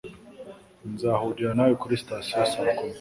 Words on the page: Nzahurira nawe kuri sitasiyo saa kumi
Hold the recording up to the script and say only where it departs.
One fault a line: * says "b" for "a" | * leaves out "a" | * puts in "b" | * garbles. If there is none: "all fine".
all fine